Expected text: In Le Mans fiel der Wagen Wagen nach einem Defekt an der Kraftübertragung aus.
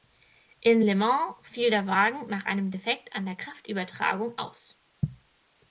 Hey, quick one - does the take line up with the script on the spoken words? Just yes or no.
no